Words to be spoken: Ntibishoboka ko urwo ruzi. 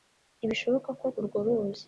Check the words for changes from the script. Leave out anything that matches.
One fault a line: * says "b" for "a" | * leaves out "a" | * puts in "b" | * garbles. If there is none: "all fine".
all fine